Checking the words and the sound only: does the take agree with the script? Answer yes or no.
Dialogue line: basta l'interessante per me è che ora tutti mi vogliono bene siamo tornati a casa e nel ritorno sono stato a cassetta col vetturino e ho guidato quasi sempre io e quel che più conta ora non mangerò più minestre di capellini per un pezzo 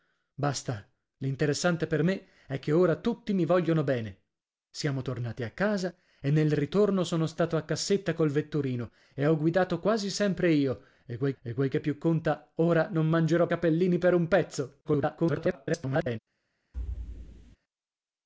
no